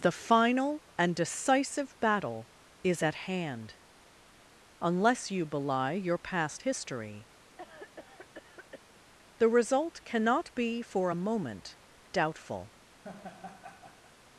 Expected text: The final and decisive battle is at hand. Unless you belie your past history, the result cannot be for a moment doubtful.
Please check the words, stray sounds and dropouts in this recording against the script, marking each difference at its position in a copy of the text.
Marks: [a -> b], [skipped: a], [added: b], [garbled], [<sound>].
The final and decisive battle is at hand. Unless you belie your past history, [cough] the result cannot be for a moment doubtful. [laugh]